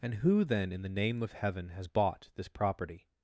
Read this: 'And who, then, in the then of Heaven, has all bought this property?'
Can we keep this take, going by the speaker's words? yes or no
no